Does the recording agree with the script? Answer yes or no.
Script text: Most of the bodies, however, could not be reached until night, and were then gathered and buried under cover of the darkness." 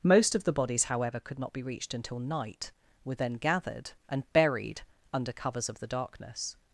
no